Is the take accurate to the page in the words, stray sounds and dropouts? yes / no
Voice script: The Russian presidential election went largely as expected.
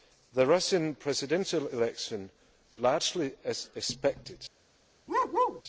no